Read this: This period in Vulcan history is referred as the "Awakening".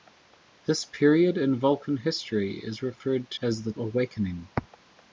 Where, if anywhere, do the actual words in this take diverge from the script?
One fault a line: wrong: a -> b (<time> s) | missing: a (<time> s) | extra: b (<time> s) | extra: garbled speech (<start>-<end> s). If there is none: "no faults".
no faults